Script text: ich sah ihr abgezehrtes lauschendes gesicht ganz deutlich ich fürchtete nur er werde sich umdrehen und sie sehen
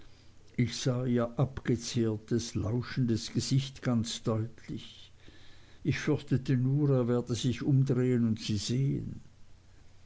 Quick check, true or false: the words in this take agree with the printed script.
true